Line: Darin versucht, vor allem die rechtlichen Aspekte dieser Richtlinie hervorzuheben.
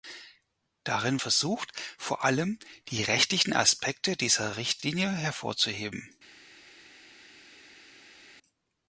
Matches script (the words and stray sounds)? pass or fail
pass